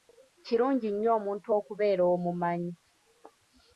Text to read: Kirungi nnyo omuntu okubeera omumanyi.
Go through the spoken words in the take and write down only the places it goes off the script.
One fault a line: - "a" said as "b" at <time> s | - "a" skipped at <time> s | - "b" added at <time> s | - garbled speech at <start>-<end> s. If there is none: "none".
none